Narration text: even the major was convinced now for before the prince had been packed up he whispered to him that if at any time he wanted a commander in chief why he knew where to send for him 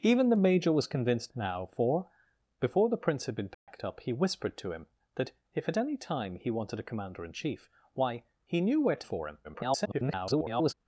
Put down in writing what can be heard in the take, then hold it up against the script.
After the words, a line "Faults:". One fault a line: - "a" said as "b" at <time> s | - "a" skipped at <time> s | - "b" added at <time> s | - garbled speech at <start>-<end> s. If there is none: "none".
even the major was convinced now for before the prince had been packed up he whispered to him that if at any time he wanted a commander in chief why he knew where to for him [garbled]
Faults:
- "send" skipped at 9.1 s
- garbled speech at 9.4-10.7 s